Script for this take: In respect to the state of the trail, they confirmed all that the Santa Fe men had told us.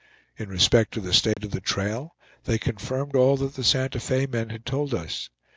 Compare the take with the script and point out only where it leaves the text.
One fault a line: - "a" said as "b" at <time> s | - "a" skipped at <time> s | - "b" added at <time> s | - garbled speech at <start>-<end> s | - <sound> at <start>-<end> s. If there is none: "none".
- dropout at 1.3-1.4 s